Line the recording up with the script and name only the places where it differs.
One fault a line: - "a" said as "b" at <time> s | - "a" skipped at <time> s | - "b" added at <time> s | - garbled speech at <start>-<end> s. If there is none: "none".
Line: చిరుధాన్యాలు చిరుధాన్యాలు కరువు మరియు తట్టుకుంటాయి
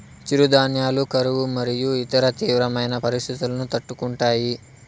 - "చిరుధాన్యాలు" skipped at 1.0 s
- "ఇతర తీవ్రమైన పరిస్తితులను" added at 2.0 s